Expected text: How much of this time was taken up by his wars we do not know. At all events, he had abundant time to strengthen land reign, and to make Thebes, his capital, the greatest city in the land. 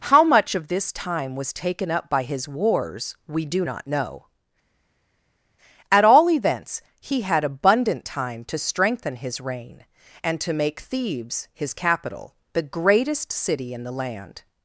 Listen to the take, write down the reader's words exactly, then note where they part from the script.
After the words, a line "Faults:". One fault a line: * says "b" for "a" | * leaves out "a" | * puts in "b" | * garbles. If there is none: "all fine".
How much of this time was taken up by his wars we do not know. At all events, he had abundant time to strengthen his reign, and to make Thebes, his capital, the greatest city in the land.
Faults:
* says "his" for "land"